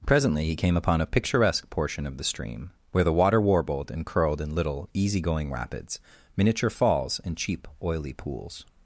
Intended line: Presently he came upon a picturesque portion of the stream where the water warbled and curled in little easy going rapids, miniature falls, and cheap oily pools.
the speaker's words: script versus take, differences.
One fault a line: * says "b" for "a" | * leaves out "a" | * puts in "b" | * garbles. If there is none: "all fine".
all fine